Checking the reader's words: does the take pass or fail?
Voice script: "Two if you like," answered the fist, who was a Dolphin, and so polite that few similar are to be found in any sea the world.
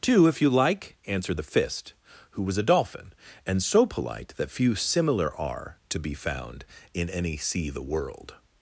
pass